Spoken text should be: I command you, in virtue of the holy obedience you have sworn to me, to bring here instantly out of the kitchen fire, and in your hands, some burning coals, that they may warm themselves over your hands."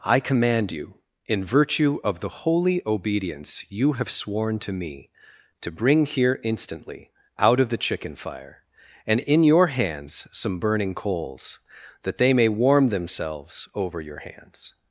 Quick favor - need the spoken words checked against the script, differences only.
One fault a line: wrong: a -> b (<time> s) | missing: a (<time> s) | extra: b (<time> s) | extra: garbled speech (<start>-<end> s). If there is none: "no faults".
wrong: kitchen -> chicken (7.8 s)